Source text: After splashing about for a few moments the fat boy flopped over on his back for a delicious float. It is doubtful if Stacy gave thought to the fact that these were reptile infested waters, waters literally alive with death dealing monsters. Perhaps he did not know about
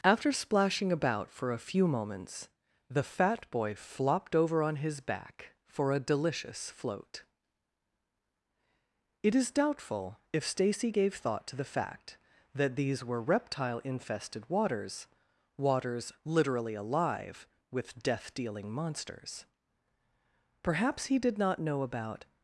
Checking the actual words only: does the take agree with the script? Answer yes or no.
yes